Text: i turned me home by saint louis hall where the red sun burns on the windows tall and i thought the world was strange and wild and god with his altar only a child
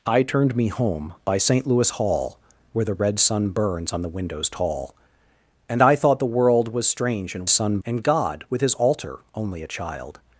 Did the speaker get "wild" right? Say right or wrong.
wrong